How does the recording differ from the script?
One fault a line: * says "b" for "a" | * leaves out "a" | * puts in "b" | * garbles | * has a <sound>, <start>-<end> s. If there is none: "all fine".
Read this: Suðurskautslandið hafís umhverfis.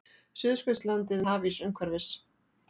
all fine